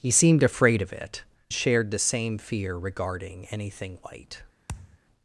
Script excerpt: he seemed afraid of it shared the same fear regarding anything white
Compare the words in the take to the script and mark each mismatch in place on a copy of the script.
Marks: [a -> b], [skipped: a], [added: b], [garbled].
he seemed afraid of it shared the same fear regarding anything white